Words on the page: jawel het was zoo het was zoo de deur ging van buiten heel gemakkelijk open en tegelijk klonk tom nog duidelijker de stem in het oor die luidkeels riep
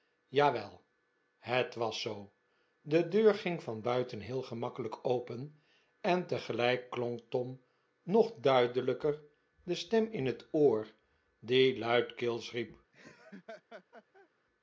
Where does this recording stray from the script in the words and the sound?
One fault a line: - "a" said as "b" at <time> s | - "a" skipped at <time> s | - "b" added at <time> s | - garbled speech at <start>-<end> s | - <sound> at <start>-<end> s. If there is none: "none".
- "het was zoo" skipped at 2.3 s
- laugh at 12.9-14.3 s